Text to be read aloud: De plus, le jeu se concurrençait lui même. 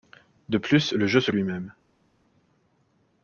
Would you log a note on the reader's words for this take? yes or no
yes